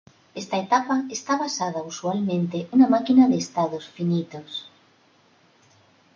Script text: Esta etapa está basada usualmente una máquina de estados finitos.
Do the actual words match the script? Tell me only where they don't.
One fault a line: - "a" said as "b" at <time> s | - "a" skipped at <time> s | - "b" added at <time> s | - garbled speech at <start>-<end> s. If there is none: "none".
none